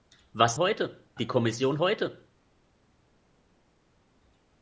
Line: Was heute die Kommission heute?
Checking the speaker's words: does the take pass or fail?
pass